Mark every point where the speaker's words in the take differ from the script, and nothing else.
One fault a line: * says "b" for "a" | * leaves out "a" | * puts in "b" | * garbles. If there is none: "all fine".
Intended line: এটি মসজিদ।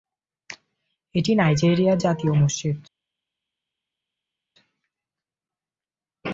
* puts in "নাইজেরিয়ার জাতীয়"